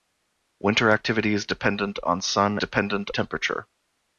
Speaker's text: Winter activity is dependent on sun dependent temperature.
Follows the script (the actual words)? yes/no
yes